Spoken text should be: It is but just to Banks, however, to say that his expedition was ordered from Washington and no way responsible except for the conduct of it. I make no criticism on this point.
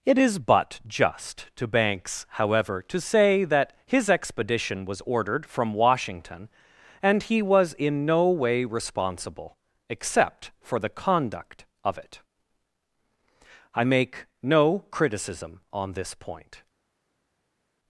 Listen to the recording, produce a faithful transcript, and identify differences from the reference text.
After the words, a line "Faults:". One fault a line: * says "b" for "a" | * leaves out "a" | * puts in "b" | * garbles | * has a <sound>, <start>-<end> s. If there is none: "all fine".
It is but just to Banks, however, to say that his expedition was ordered from Washington and he was in no way responsible except for the conduct of it. I make no criticism on this point.
Faults:
* puts in "he was in"